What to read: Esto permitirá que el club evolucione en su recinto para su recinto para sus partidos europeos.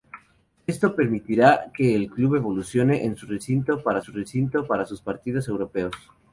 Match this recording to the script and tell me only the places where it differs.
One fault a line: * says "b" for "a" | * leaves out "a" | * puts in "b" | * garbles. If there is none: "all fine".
all fine